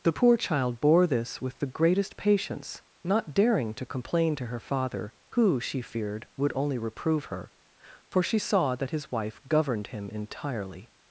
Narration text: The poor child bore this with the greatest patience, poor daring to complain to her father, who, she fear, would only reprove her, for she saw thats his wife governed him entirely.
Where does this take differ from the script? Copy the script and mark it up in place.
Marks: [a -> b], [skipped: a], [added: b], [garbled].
The poor child bore this with the greatest patience, [poor -> not] daring to complain to her father, who, she [fear, -> feared] would only reprove her, for she saw [thats -> that] his wife governed him entirely.